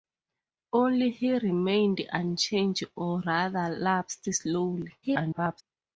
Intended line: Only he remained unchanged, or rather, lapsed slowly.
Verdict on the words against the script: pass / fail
fail